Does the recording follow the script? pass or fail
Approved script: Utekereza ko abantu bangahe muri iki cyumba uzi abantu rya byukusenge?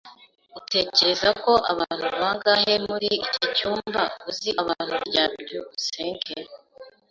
pass